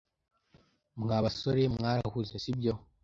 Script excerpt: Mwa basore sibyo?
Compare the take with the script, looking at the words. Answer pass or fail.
fail